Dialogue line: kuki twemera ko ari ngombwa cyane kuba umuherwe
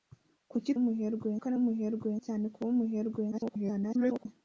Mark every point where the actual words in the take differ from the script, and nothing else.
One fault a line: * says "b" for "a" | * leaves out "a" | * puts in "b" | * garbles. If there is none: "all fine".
* says "umuherwe" for "twemera"
* says "umuherwe" for "ngombwa"
* garbles